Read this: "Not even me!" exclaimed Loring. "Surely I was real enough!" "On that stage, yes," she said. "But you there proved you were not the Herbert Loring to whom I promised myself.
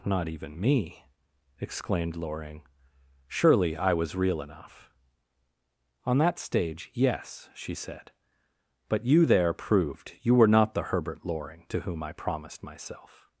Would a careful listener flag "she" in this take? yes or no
no